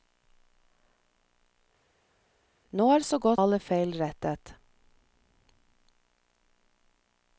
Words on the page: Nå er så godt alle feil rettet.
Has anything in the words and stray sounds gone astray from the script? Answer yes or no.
no